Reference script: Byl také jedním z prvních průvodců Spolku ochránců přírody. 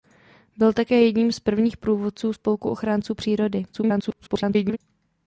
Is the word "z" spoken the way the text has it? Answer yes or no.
yes